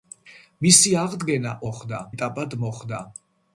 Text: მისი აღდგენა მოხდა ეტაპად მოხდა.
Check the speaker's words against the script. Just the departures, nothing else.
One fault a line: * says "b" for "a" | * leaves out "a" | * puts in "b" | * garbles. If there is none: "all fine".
all fine